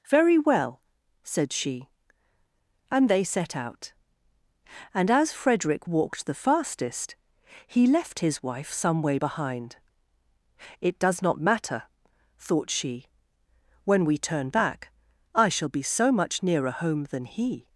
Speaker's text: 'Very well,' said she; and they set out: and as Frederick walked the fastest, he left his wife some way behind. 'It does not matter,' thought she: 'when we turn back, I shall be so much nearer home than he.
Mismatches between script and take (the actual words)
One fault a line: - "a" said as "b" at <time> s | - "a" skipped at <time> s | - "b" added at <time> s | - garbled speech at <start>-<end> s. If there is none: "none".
none